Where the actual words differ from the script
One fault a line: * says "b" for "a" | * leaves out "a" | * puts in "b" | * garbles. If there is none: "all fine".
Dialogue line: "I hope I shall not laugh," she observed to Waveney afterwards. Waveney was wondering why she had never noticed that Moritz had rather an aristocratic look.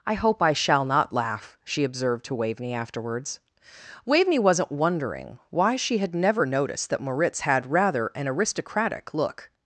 * says "wasn't" for "was"